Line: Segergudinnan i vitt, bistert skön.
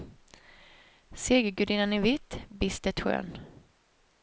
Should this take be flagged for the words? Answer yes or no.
no